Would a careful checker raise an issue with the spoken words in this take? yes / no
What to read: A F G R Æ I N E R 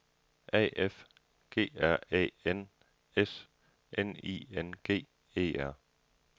yes